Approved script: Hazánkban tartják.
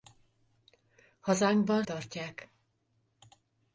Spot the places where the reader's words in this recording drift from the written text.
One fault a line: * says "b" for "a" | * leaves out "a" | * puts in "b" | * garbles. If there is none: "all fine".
all fine